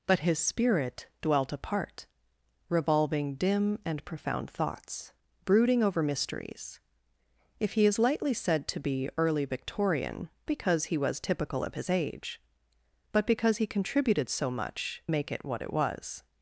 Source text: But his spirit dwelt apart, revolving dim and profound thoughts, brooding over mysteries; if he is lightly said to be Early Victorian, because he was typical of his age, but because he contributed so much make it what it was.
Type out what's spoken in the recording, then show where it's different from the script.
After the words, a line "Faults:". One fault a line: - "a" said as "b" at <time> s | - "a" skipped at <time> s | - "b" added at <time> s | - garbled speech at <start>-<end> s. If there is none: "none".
But his spirit dwelt apart, revolving dim and profound thoughts, brooding over mysteries; if he is lightly said to be Early Victorian, because he was typical of his age, but because he contributed so much make it what it was.
Faults:
none